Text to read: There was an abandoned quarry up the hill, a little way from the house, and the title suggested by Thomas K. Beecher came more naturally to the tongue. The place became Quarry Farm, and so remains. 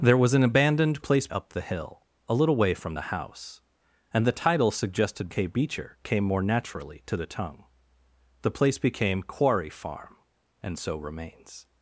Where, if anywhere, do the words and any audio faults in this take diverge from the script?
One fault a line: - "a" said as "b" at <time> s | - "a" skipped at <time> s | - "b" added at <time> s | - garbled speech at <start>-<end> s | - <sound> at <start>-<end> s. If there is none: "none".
- "quarry" said as "place" at 1.0 s
- "by Thomas" skipped at 5.3 s